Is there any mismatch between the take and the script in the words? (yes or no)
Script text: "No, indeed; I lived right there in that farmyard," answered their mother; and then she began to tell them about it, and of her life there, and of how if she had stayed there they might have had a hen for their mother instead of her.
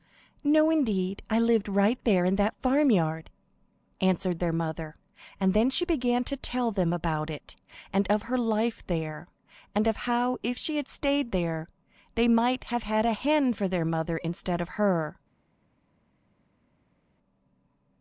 no